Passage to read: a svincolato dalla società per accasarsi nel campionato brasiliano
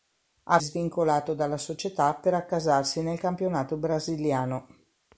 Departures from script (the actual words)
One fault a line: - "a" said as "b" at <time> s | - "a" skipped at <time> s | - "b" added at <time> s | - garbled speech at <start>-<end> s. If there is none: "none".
none